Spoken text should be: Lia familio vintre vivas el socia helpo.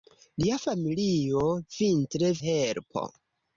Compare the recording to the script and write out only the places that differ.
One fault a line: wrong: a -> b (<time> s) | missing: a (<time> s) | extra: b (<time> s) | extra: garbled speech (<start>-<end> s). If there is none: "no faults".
missing: vivas el socia (2.3 s)